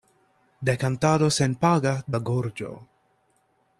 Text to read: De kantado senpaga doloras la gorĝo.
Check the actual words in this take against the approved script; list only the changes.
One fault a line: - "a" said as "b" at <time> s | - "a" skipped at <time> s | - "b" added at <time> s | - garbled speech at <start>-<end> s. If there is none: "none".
- "doloras" skipped at 1.9 s